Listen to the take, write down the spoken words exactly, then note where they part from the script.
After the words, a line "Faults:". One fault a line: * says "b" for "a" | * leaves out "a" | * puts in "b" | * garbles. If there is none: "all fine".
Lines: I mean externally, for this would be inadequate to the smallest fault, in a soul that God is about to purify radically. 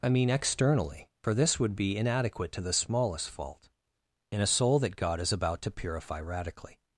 I mean externally, for this would be inadequate to the smallest fault, in a soul that God is about to purify radically.
Faults:
all fine